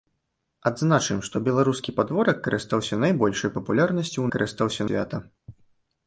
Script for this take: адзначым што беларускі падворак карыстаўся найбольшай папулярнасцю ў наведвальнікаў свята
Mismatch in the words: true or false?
true